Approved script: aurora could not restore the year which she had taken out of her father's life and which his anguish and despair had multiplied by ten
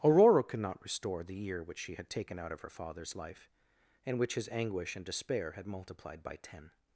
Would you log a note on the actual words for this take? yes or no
no